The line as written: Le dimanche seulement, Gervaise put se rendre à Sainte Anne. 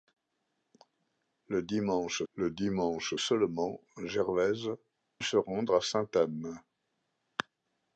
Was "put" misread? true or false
true